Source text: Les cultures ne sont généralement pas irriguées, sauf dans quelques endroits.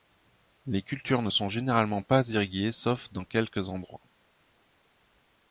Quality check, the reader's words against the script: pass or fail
pass